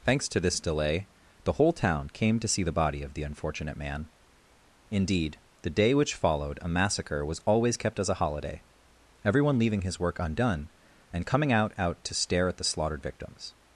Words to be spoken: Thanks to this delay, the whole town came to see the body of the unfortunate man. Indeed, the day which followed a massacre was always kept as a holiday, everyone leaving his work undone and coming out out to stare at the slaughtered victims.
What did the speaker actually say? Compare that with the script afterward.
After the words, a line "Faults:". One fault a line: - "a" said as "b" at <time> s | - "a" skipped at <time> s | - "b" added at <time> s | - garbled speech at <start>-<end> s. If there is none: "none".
Thanks to this delay, the whole town came to see the body of the unfortunate man. Indeed, the day which followed a massacre was always kept as a holiday, everyone leaving his work undone and coming out out to stare at the slaughtered victims.
Faults:
none